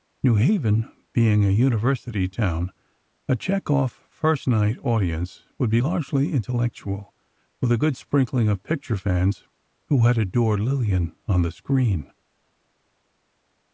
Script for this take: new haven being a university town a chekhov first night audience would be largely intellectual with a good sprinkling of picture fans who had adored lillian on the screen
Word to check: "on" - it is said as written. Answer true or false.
true